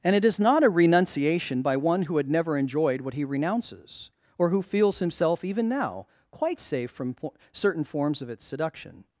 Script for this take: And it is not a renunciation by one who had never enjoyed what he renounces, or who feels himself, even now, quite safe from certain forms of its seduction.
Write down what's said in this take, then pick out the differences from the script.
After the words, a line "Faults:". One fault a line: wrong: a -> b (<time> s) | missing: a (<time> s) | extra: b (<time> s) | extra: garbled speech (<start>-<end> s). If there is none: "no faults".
And it is not a renunciation by one who had never enjoyed what he renounces, or who feels himself, even now, quite safe from po certain forms of its seduction.
Faults:
extra: po (7.1 s)